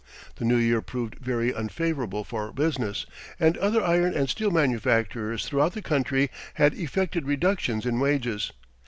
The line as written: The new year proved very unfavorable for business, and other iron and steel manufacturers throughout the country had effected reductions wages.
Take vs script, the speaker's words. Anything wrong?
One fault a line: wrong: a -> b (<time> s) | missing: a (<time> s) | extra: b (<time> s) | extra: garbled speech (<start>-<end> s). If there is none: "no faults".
extra: in (7.8 s)